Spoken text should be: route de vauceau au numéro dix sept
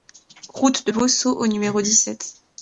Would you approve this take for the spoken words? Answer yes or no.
yes